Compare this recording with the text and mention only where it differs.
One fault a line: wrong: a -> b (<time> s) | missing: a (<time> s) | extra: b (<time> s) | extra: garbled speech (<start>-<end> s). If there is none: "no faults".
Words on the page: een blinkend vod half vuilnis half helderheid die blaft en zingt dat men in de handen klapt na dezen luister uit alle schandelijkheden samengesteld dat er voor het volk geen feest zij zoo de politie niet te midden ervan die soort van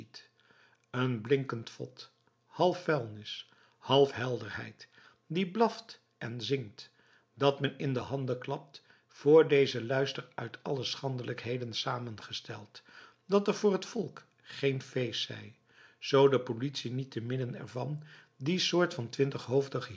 wrong: na -> voor (9.1 s)